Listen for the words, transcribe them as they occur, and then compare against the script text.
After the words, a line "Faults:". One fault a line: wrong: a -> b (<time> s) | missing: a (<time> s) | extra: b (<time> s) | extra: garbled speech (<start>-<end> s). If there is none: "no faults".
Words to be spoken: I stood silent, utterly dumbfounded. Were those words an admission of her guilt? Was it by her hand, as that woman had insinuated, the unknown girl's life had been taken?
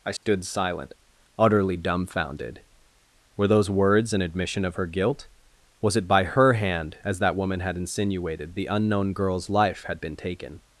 I stood silent, utterly dumbfounded. Were those words an admission of her guilt? Was it by her hand, as that woman had insinuated, the unknown girl's life had been taken?
Faults:
no faults